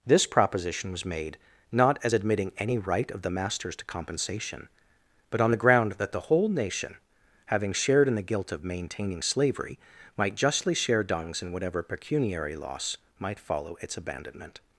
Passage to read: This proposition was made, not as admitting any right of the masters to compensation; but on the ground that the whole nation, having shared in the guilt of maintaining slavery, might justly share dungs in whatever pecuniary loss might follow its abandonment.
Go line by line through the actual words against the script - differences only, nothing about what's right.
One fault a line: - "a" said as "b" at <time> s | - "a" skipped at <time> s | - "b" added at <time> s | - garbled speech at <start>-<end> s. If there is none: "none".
none